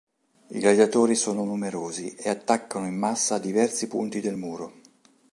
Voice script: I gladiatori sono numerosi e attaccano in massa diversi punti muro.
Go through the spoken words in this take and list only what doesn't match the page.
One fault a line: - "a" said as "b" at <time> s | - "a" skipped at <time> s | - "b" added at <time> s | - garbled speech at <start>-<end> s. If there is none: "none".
- "del" added at 4.2 s